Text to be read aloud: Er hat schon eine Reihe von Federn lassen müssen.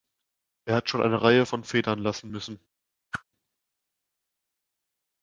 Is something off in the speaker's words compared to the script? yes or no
no